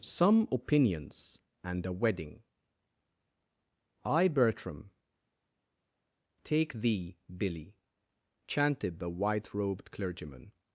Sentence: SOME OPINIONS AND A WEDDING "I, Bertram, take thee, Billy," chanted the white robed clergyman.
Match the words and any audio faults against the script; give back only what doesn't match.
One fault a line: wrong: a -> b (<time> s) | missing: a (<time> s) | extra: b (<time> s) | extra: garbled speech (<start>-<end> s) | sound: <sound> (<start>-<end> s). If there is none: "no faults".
no faults